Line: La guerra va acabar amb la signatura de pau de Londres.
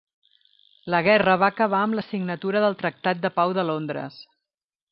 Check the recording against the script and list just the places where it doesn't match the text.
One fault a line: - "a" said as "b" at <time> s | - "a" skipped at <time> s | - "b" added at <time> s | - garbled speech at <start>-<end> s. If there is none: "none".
- "del tractat" added at 2.7 s